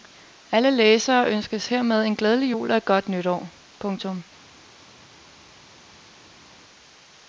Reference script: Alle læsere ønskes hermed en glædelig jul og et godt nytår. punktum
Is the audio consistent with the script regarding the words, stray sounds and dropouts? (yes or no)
yes